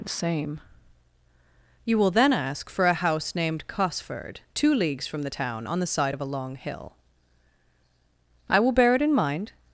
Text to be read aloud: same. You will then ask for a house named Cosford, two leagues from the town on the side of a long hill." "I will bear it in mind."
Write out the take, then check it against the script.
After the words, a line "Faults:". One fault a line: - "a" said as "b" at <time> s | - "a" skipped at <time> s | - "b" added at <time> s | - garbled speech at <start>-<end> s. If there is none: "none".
same. You will then ask for a house named Cosford, two leagues from the town on the side of a long hill." "I will bear it in mind."
Faults:
none